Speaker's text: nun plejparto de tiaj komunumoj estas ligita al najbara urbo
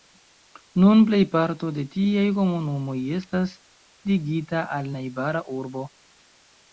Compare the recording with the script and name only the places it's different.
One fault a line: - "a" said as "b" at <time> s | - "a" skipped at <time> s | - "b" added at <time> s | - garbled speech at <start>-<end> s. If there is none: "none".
none